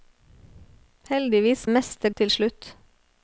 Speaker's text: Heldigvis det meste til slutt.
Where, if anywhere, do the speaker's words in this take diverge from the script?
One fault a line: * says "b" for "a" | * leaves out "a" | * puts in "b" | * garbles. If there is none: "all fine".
all fine